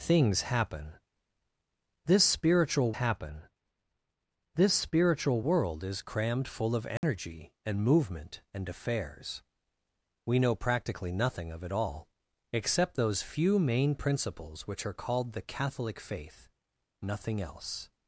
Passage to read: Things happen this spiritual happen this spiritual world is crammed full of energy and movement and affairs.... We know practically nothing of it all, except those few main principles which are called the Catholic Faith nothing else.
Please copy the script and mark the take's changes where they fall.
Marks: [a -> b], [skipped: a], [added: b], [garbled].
Things happen this spiritual happen this spiritual world is crammed full of energy and movement and affairs.... We know practically nothing of it all, except those few main principles which are called the Catholic Faith nothing else.